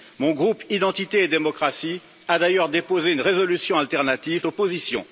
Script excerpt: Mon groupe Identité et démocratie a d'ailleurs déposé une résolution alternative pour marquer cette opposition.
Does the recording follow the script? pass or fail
fail